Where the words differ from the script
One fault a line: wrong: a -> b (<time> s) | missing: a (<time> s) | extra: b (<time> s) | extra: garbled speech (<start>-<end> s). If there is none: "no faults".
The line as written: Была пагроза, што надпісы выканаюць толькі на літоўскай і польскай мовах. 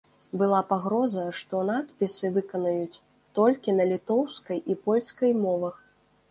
no faults